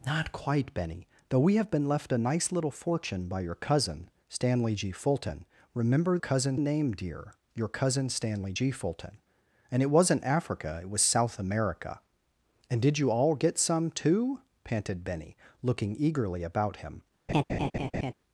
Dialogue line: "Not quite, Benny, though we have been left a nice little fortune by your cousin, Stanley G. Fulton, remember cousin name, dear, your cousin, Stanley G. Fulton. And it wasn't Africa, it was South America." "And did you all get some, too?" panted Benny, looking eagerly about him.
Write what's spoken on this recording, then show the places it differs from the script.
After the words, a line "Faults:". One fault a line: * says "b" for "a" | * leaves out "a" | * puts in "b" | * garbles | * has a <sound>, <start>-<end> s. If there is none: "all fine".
"Not quite, Benny, though we have been left a nice little fortune by your cousin, Stanley G. Fulton, remember cousin name, dear, your cousin, Stanley G. Fulton. And it wasn't Africa, it was South America." "And did you all get some, too?" panted Benny, looking eagerly about him.
Faults:
* has a laugh, 17.3-18.1 s